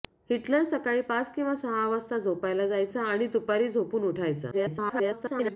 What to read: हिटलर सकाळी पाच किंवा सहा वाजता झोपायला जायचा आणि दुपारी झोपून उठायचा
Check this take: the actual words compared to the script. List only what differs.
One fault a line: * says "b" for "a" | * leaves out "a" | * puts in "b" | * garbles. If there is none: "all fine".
* garbles